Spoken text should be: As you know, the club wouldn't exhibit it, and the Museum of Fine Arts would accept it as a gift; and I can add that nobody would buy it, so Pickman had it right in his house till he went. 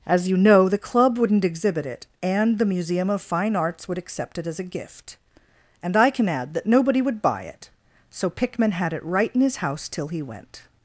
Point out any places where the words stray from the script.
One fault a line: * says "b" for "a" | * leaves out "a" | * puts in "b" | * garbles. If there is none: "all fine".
all fine